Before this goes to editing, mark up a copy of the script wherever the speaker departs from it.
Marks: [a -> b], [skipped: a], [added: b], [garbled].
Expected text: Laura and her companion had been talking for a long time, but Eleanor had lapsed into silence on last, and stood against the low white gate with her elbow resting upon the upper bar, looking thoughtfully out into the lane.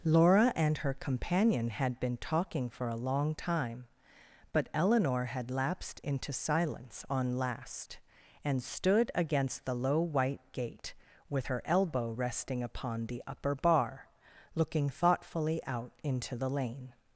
Laura and her companion had been talking for a long time, but Eleanor had lapsed into silence on last, and stood against the low white gate with her elbow resting upon the upper bar, looking thoughtfully out into the lane.